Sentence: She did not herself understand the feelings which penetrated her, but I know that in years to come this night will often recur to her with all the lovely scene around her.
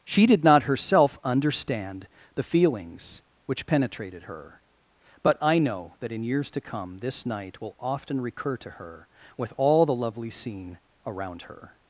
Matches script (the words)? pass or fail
pass